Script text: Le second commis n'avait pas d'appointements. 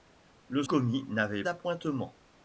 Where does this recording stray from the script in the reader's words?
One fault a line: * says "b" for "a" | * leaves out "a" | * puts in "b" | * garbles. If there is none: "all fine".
* leaves out "second"
* leaves out "pas"